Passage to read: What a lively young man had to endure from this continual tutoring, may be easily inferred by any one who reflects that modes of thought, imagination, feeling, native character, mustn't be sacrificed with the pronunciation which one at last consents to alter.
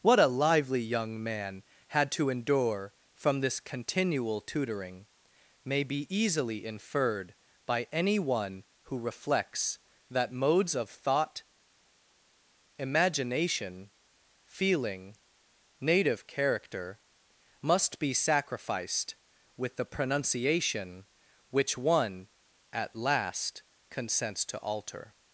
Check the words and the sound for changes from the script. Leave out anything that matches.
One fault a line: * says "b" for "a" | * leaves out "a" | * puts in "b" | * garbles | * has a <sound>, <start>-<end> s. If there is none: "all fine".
* says "must" for "mustn't"